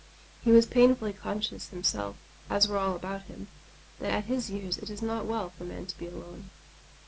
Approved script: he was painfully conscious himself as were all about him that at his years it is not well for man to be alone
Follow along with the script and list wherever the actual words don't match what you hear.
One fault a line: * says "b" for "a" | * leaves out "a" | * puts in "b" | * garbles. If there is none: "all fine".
all fine